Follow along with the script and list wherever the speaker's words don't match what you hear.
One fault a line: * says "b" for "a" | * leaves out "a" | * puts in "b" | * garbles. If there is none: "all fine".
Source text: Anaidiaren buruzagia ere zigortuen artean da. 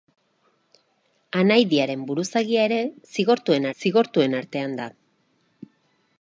* puts in "zigortuen"